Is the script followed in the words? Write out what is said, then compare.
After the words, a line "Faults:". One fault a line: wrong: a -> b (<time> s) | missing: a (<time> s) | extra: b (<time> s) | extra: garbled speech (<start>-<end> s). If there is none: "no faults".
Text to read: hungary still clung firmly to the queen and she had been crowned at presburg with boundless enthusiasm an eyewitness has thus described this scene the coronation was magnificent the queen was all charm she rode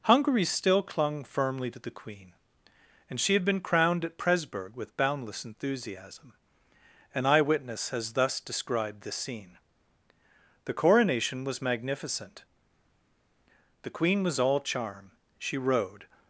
hungary still clung firmly to the queen and she had been crowned at presburg with boundless enthusiasm an eyewitness has thus described this scene the coronation was magnificent the queen was all charm she rode
Faults:
no faults